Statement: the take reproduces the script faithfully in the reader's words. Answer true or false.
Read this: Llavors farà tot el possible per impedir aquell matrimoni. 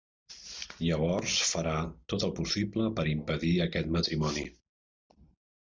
false